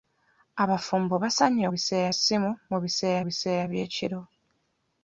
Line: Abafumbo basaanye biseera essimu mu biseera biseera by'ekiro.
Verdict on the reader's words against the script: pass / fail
pass